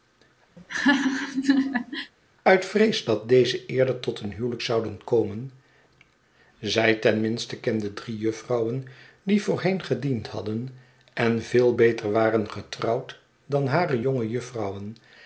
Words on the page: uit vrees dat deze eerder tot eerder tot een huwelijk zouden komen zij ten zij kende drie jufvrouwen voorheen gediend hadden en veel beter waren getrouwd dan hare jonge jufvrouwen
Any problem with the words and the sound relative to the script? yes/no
yes